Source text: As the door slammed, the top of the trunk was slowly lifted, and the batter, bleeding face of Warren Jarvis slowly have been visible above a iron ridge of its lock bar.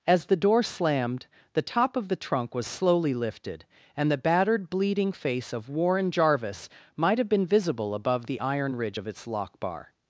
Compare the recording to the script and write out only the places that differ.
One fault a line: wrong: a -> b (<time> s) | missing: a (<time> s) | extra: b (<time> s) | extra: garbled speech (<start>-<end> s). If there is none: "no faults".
wrong: batter -> battered (4.2 s)
wrong: slowly -> might (7.0 s)
wrong: a -> the (8.3 s)